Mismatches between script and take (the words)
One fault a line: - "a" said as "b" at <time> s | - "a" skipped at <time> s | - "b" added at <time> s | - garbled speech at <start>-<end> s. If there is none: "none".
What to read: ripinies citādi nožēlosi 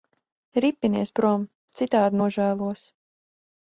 - "prom" added at 1.2 s